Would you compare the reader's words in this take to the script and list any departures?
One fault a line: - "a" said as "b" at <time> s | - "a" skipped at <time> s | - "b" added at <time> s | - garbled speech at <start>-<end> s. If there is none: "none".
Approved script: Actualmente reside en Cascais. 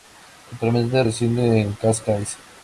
none